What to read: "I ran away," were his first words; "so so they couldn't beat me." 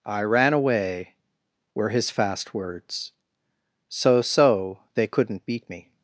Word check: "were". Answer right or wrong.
right